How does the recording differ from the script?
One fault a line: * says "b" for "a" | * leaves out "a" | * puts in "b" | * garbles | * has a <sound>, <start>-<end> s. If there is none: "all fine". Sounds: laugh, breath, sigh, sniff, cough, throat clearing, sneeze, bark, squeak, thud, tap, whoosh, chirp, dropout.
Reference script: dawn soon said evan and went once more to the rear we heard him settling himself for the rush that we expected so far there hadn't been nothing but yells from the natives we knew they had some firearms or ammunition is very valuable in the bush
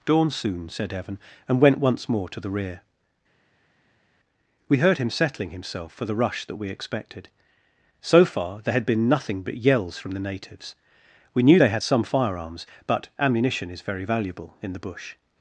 * says "had" for "hadn't"
* says "but" for "or"